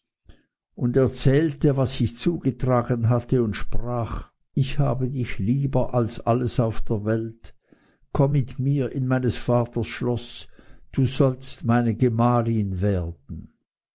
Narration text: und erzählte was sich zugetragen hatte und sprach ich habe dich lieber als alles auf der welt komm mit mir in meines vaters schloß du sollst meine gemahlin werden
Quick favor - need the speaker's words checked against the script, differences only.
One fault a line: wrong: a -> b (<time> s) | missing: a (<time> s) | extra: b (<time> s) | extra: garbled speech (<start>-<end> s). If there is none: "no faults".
no faults